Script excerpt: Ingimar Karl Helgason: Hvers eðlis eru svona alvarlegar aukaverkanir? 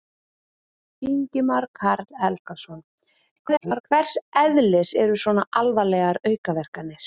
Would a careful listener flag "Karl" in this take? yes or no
no